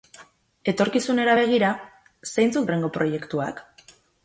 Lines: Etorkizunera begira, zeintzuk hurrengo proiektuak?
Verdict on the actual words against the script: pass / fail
pass